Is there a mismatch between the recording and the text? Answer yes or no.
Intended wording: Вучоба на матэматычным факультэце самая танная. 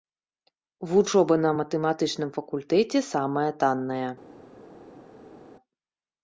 no